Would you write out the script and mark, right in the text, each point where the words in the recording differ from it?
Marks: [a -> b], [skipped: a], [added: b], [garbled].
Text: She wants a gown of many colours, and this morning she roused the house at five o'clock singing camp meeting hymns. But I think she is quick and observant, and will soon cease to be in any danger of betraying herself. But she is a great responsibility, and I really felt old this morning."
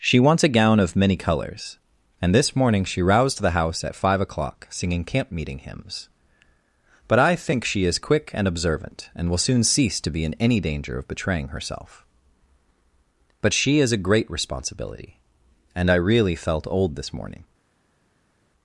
She wants a gown of many colours, and this morning she roused the house at five o'clock singing camp meeting hymns. But I think she is quick and observant, and will soon cease to be in any danger of betraying herself. But she is a great responsibility, and I really felt old this morning."